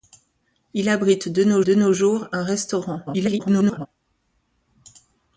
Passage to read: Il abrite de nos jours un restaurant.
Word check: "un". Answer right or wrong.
right